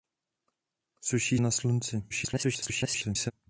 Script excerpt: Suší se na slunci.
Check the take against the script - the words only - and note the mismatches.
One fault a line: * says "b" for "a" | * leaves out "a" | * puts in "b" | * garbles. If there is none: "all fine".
* leaves out "se"
* garbles